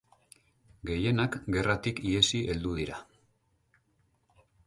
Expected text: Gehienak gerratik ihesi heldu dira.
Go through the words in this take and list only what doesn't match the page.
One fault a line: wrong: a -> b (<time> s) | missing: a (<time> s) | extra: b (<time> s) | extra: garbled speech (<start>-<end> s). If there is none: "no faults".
no faults